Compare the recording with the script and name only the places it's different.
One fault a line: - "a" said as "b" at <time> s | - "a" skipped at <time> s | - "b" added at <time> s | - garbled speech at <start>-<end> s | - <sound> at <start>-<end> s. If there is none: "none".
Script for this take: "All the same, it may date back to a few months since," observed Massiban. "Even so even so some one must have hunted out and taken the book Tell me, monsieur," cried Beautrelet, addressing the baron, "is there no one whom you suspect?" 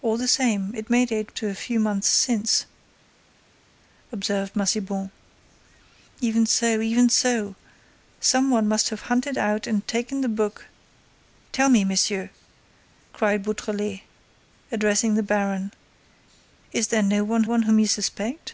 - "back" skipped at 1.3 s
- "one" added at 17.4 s